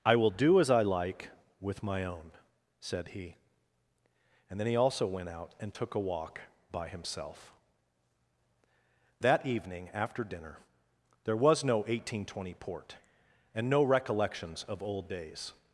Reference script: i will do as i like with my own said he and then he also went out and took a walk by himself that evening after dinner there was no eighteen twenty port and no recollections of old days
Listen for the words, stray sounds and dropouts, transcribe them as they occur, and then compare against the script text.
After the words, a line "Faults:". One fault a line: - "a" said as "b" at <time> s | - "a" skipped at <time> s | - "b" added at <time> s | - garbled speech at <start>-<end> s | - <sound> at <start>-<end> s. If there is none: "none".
i will do as i like with my own said he and then he also went out and took a walk by himself that evening after dinner there was no eighteen twenty port and no recollections of old days
Faults:
none